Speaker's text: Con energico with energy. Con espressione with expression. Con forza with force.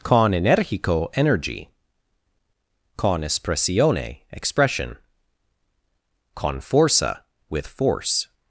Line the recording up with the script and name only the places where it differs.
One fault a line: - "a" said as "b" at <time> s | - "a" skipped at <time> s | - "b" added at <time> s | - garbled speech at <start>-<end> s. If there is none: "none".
- "with" skipped at 1.1 s
- "with" skipped at 4.2 s